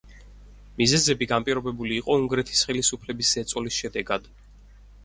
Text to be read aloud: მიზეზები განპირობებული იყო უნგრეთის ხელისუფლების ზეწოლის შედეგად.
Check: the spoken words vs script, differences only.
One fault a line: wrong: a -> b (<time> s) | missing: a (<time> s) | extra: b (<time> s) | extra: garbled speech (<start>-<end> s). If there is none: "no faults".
no faults